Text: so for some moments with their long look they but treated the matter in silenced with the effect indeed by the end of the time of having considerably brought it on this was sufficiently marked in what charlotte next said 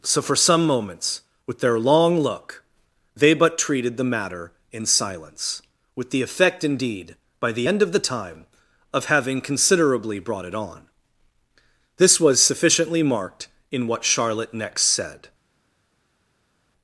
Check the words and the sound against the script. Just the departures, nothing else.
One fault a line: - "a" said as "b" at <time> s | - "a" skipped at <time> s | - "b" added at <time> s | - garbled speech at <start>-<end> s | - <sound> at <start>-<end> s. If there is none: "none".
- "silenced" said as "silence" at 4.9 s